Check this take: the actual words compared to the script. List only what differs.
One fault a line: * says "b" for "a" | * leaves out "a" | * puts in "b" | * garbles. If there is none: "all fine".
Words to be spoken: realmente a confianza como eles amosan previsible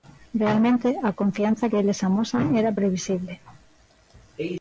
* says "que" for "como"
* puts in "era"